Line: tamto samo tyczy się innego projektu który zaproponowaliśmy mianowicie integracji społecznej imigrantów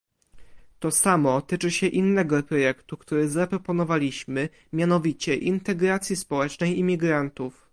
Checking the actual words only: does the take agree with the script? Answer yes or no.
no